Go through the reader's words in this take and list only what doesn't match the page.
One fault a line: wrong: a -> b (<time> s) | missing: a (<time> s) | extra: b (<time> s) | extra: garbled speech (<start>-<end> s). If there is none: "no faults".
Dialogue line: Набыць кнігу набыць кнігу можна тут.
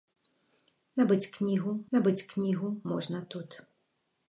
no faults